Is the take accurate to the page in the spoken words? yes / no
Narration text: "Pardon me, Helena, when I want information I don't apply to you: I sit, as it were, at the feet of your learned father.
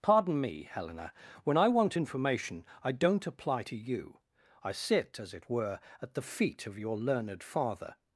yes